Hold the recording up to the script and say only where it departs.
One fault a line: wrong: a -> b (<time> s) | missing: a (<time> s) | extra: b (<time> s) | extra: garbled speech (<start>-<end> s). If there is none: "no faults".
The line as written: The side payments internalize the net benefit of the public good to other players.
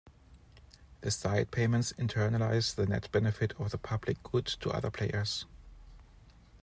no faults